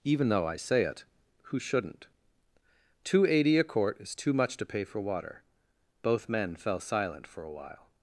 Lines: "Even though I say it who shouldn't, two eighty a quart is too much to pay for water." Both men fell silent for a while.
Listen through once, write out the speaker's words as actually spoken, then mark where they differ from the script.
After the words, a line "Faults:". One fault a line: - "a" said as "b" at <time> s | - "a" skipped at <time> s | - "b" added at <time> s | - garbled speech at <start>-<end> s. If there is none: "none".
"Even though I say it who shouldn't, two eighty a quart is too much to pay for water." Both men fell silent for a while.
Faults:
none